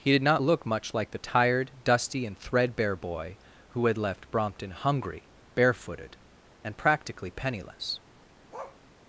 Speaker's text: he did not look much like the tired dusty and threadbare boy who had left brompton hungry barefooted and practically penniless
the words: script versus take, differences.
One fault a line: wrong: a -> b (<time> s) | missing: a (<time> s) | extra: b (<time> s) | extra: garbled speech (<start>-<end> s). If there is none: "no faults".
no faults